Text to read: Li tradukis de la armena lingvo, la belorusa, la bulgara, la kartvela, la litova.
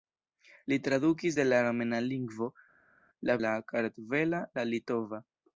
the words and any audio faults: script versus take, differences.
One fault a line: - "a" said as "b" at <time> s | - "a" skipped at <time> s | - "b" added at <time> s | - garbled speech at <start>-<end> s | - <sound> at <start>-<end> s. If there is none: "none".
- "belorusa la bulgara" skipped at 3.4 s